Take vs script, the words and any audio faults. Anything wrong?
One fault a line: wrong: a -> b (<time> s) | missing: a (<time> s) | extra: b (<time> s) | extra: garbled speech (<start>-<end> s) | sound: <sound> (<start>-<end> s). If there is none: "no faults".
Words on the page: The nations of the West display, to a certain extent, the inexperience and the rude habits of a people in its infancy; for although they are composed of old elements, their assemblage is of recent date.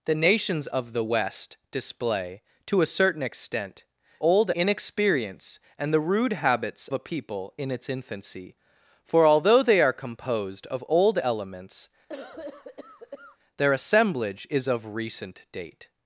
wrong: the -> old (4.2 s)
missing: of (6.9 s)
sound: cough (12.1-13.4 s)